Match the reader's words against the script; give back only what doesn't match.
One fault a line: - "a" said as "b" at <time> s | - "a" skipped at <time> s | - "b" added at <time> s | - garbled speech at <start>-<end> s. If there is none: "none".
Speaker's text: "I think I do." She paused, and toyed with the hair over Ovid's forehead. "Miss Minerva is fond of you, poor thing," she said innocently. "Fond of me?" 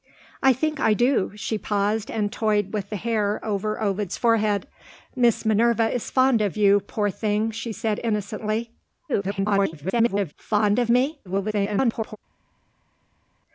- garbled speech at 9.1-10.3 s
- garbled speech at 11.2-12.2 s